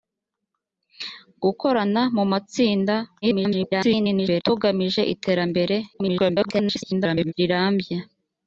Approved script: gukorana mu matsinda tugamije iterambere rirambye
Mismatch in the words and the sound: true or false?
true